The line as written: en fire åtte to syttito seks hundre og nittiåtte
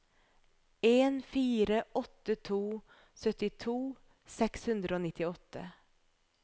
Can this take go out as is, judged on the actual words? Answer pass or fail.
pass